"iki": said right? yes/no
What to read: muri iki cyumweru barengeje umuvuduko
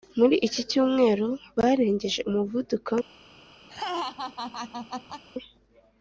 yes